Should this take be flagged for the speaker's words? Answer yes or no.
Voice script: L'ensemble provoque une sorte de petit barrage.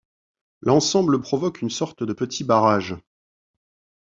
no